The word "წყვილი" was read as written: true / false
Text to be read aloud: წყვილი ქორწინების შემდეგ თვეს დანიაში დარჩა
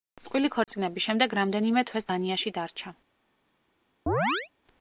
true